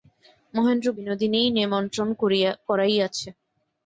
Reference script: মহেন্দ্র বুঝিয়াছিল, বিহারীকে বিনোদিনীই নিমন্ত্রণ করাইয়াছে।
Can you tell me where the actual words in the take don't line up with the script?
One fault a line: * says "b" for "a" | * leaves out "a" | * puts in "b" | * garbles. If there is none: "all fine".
* leaves out "বুঝিয়াছিল বিহারীকে"